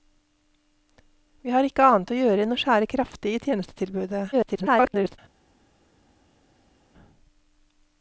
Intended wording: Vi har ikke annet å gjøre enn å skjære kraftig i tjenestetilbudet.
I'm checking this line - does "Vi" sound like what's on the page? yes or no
yes